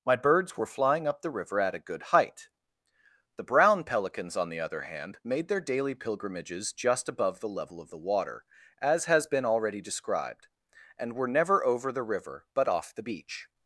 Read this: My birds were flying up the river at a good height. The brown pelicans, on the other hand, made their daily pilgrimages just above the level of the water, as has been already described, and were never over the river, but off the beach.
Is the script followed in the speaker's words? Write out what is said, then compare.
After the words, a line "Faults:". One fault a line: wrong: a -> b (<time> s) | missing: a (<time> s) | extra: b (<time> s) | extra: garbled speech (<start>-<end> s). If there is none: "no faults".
My birds were flying up the river at a good height. The brown pelicans, on the other hand, made their daily pilgrimages just above the level of the water, as has been already described, and were never over the river, but off the beach.
Faults:
no faults